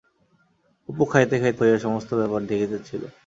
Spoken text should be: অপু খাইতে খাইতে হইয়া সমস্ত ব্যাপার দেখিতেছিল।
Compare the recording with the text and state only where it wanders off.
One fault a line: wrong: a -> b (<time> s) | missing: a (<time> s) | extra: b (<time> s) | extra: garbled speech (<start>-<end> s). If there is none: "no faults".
no faults